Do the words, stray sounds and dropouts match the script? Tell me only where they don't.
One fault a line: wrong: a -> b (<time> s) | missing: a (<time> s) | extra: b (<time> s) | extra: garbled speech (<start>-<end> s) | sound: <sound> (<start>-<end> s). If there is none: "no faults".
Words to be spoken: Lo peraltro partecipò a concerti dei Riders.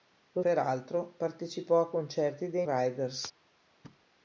sound: thud (3.8-4.1 s)